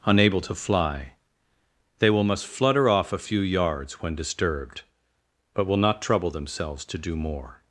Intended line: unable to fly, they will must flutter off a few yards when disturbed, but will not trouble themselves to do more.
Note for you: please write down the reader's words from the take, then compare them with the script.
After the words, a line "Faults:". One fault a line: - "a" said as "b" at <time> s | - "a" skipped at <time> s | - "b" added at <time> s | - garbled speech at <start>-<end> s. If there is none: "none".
unable to fly, they will must flutter off a few yards when disturbed, but will not trouble themselves to do more.
Faults:
none